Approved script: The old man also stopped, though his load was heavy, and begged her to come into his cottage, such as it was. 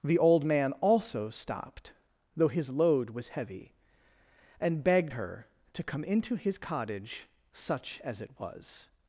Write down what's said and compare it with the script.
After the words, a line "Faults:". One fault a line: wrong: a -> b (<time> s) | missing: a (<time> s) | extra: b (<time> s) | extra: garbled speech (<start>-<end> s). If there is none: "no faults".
The old man also stopped, though his load was heavy, and begged her to come into his cottage, such as it was.
Faults:
no faults